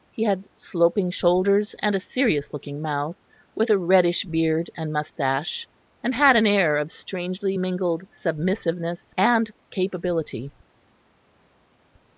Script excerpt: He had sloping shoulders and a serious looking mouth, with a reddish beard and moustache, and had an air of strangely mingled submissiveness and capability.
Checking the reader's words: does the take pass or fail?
pass